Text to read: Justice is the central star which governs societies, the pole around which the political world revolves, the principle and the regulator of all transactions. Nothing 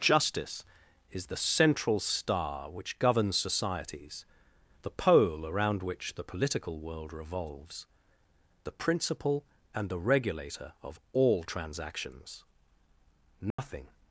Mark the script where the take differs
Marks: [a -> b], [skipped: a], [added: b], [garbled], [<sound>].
Justice is the central star which governs societies, the pole around which the political world revolves, the principle and the regulator of all transactions. Nothing [dropout]